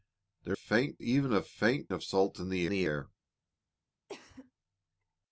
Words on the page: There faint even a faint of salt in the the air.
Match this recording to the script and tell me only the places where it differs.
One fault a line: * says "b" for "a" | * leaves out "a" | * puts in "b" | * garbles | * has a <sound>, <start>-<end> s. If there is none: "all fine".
* has a cough, 4.1-4.5 s